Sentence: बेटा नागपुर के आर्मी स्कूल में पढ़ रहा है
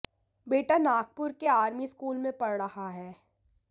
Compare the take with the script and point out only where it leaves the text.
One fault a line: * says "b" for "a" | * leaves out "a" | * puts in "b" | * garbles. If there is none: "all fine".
all fine